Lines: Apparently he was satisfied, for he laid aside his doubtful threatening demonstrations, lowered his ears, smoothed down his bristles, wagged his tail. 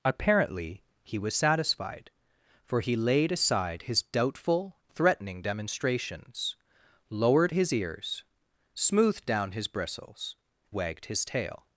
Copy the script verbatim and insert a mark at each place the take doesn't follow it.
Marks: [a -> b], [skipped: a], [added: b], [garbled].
Apparently he was satisfied, for he laid aside his doubtful threatening demonstrations, lowered his ears, smoothed down his bristles, wagged his tail.